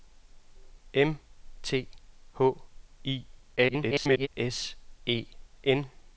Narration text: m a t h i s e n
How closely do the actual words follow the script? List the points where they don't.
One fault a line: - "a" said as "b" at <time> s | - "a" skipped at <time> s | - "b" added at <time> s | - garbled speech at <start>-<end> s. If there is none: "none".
- "a" skipped at 1.2 s
- garbled speech at 3.6-4.3 s